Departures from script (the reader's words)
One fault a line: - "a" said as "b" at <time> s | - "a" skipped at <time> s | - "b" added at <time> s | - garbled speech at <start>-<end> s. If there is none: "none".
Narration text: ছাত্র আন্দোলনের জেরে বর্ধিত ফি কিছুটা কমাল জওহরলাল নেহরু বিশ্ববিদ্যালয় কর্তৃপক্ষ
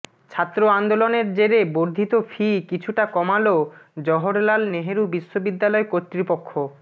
none